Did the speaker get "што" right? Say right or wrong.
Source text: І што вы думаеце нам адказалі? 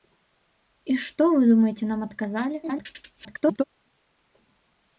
right